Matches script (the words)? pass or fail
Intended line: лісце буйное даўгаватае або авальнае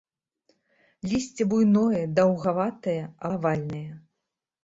fail